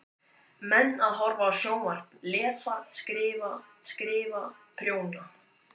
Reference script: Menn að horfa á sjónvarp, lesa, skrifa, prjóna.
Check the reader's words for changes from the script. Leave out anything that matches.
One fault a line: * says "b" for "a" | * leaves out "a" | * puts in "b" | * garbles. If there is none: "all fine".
* puts in "skrifa"